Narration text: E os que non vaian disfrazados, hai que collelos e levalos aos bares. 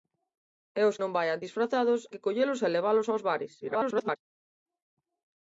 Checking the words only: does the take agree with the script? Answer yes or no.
no